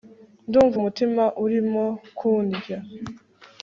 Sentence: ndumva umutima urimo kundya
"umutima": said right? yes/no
yes